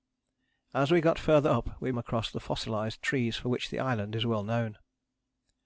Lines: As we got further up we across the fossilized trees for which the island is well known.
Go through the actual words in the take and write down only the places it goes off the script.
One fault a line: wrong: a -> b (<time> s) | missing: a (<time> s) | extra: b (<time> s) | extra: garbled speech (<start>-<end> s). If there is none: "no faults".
no faults